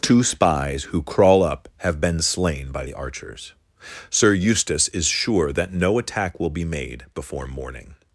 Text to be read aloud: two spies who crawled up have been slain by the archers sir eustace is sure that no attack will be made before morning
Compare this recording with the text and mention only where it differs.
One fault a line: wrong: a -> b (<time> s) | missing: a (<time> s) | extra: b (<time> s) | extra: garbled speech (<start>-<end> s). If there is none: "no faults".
wrong: crawled -> crawl (1.0 s)